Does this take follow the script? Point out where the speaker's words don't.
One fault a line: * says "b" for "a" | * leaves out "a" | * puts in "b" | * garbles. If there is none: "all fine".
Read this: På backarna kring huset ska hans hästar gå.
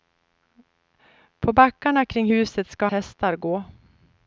* leaves out "hans"